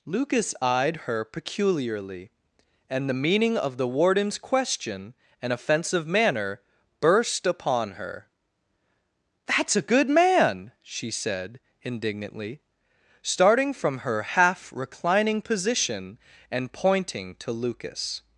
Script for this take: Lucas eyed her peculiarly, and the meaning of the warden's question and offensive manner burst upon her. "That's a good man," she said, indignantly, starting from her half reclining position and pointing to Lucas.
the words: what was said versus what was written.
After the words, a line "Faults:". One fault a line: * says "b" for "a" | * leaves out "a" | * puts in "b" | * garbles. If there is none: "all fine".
Lucas eyed her peculiarly, and the meaning of the warden's question and offensive manner burst upon her. "That's a good man," she said, indignantly, starting from her half reclining position and pointing to Lucas.
Faults:
all fine